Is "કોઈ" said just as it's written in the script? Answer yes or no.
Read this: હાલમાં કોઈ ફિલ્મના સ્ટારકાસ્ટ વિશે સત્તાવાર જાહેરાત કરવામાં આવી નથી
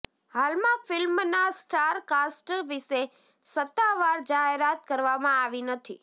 no